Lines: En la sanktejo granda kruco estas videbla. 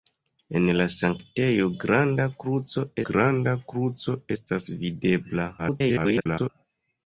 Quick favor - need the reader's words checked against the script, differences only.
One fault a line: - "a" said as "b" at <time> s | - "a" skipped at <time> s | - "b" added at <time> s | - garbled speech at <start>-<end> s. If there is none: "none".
- "granda kruco" added at 3.1 s
- garbled speech at 5.6-6.5 s